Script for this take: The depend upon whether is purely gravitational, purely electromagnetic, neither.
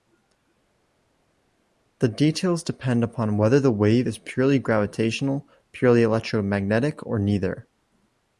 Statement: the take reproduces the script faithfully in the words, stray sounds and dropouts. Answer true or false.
false